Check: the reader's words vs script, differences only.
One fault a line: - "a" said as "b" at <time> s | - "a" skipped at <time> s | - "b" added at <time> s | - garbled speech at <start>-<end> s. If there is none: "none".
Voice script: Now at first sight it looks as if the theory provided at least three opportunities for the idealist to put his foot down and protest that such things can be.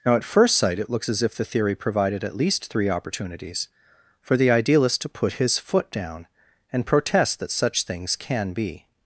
none